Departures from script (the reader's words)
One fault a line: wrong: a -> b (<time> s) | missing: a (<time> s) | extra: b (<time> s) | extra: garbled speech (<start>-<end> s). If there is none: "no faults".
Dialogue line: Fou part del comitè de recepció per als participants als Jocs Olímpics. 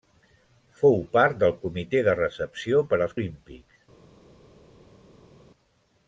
missing: participants als Jocs (3.1 s)